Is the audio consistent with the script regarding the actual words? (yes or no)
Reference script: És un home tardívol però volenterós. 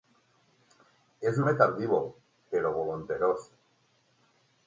no